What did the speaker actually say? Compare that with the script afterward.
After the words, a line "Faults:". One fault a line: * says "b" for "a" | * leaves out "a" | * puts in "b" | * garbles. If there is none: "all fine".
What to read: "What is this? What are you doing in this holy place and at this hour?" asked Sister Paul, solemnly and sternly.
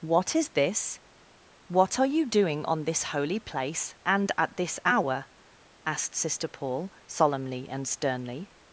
"What is this? What are you doing on this holy place and at this hour?" asked Sister Paul, solemnly and sternly.
Faults:
* says "on" for "in"